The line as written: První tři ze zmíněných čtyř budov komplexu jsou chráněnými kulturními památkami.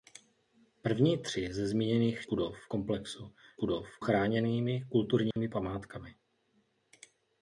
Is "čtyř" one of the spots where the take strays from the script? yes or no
yes